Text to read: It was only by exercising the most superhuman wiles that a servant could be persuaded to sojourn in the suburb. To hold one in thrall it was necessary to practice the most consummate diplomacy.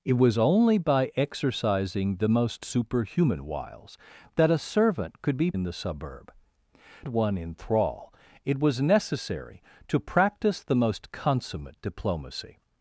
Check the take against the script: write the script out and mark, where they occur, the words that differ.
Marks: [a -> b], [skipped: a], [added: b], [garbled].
It was only by exercising the most superhuman wiles that a servant could be [skipped: persuaded to sojourn] in the suburb. [skipped: To hold] one in thrall it was necessary to practice the most consummate diplomacy.